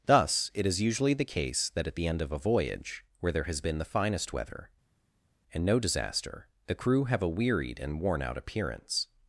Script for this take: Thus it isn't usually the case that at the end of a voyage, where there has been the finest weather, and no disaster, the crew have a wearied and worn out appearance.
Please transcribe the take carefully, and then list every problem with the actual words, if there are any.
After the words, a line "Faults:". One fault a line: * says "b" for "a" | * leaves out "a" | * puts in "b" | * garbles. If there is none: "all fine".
Thus it is usually the case that at the end of a voyage, where there has been the finest weather, and no disaster, the crew have a wearied and worn out appearance.
Faults:
* says "is" for "isn't"